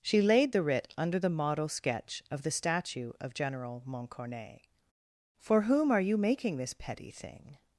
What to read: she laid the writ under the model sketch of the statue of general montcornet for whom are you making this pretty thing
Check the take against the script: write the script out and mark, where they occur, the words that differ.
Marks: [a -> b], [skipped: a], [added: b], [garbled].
she laid the writ under the model sketch of the statue of general montcornet for whom are you making this [pretty -> petty] thing